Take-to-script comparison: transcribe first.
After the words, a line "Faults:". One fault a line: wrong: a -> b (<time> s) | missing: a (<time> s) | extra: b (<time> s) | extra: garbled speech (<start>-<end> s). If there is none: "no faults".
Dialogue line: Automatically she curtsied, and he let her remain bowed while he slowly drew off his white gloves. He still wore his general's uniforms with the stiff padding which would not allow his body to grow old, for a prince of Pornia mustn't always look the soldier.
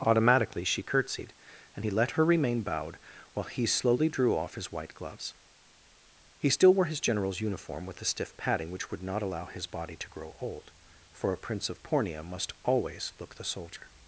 Automatically she curtsied, and he let her remain bowed while he slowly drew off his white gloves. He still wore his general's uniform with the stiff padding which would not allow his body to grow old, for a prince of Pornia must always look the soldier.
Faults:
wrong: uniforms -> uniform (7.4 s)
wrong: mustn't -> must (12.2 s)